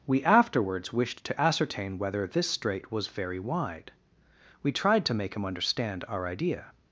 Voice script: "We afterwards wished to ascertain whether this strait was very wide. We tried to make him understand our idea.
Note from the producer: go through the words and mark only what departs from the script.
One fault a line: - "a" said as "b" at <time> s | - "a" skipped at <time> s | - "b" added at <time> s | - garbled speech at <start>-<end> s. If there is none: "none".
none